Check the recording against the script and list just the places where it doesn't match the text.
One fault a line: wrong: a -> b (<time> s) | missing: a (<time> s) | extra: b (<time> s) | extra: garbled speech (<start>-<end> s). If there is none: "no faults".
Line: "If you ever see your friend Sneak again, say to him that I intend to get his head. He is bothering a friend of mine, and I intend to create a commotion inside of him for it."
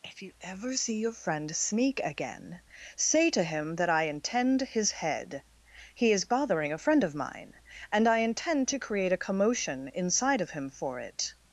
missing: to get (4.6 s)